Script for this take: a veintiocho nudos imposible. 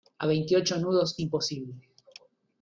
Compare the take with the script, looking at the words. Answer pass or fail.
pass